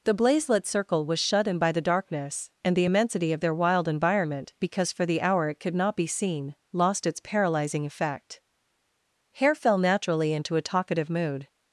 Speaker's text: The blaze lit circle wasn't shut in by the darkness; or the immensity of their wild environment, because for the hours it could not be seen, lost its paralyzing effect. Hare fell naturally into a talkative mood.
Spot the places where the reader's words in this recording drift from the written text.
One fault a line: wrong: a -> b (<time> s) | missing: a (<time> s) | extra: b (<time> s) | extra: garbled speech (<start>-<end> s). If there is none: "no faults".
wrong: wasn't -> was (1.1 s)
wrong: or -> and (2.6 s)
wrong: hours -> hour (5.2 s)